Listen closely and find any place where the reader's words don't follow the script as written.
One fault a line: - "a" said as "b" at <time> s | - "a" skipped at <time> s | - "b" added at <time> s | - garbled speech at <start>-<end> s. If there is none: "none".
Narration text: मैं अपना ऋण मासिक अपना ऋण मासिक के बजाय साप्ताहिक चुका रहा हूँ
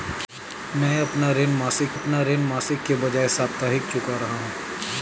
none